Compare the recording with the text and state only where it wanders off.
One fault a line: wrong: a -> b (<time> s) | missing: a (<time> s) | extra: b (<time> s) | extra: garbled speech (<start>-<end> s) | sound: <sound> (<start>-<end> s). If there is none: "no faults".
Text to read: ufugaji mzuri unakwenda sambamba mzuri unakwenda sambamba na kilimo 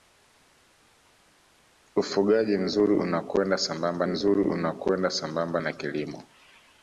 no faults